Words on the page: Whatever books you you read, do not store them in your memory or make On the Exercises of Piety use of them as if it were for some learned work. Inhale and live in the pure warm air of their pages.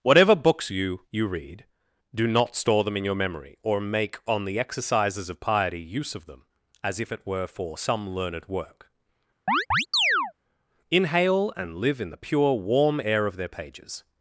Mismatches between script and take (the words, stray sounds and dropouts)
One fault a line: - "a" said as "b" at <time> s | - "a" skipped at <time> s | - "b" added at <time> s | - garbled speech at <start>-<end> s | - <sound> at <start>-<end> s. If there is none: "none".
- chirp at 9.5-10.3 s